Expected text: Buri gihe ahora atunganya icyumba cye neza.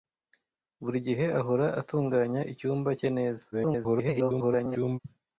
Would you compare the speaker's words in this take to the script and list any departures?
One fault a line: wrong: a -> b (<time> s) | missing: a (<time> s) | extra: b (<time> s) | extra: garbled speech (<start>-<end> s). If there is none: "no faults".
extra: garbled speech (3.5-5.0 s)